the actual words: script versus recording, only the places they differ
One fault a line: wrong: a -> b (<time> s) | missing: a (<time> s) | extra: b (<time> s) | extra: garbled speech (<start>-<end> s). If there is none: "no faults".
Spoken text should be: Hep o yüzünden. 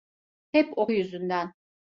no faults